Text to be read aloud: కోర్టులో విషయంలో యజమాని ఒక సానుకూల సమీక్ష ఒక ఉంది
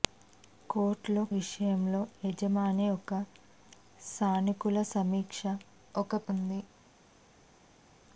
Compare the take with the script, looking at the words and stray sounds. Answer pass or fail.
pass